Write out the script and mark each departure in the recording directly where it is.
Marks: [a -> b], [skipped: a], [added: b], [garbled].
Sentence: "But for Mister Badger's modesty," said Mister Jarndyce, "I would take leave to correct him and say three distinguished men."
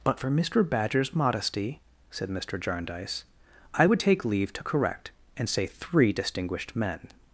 "But for Mister Badger's modesty," said Mister Jarndyce, "I would take leave to correct [skipped: him] and say three distinguished men."